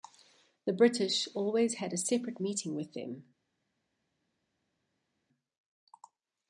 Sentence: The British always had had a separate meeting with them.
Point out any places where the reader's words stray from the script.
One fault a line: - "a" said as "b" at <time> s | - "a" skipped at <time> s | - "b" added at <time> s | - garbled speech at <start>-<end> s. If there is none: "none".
- "had" skipped at 1.9 s